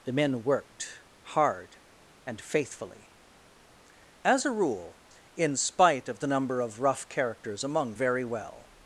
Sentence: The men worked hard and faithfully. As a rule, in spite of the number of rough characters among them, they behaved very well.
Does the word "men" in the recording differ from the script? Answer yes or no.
no